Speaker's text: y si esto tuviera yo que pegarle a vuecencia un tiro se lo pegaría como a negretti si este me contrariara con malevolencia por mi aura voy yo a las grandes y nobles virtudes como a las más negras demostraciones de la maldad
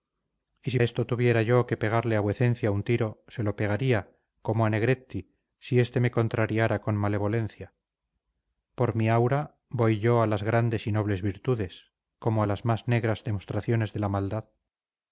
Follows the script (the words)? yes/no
yes